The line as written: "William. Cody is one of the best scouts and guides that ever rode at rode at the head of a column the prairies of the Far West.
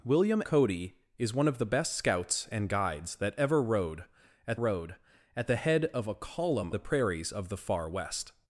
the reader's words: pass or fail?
pass